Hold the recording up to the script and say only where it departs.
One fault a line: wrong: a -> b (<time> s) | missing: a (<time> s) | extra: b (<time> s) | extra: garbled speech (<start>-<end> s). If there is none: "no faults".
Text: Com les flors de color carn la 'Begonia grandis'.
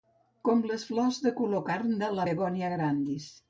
extra: de (2.0 s)